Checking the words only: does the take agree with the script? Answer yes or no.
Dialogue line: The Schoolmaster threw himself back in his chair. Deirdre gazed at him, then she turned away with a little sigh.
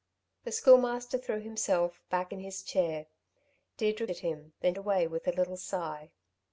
no